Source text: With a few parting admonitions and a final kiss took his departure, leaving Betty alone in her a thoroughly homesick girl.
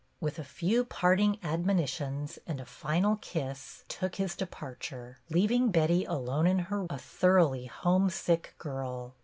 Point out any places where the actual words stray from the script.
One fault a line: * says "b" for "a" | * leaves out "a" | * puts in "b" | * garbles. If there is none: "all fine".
all fine